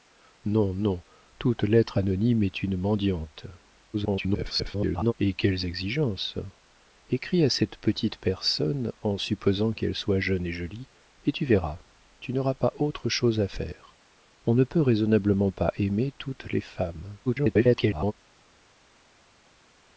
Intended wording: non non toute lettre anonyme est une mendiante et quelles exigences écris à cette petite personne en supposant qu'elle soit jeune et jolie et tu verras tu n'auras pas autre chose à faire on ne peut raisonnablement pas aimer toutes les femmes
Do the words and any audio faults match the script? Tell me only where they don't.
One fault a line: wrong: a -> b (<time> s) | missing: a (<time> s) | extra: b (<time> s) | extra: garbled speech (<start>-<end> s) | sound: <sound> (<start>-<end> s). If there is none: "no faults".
extra: garbled speech (3.9-5.1 s)
extra: garbled speech (17.3-18.1 s)